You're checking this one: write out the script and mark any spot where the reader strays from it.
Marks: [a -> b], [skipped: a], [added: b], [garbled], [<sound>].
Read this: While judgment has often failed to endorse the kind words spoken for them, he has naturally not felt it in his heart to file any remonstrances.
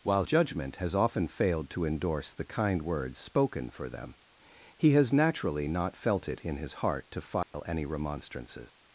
While judgment has often failed to endorse the kind words spoken for them, he has naturally not felt it in his heart to file [dropout] any remonstrances.